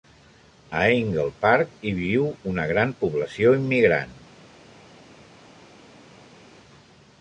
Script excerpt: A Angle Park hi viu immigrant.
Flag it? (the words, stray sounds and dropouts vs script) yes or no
yes